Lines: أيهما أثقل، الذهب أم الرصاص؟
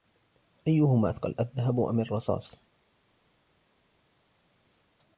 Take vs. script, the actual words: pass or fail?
pass